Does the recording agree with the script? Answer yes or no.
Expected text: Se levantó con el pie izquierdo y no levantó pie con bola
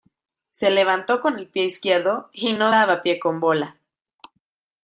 no